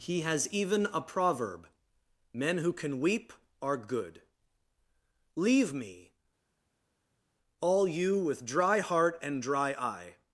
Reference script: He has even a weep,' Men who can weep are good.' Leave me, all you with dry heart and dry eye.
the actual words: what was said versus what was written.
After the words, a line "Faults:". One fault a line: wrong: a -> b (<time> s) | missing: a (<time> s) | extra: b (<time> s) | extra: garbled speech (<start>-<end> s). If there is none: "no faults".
He has even a proverb,' Men who can weep are good.' Leave me, all you with dry heart and dry eye.
Faults:
wrong: weep -> proverb (1.0 s)